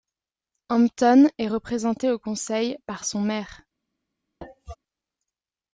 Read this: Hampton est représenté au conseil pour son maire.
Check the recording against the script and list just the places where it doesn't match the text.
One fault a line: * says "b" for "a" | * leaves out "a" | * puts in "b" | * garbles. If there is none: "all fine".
* says "par" for "pour"